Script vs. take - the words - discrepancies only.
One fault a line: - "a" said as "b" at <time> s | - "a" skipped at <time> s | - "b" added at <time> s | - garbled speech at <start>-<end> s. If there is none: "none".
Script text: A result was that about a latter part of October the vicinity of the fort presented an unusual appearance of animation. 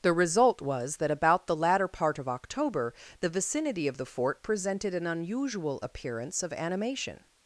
- "A" said as "The" at 0.0 s
- "a" said as "the" at 1.4 s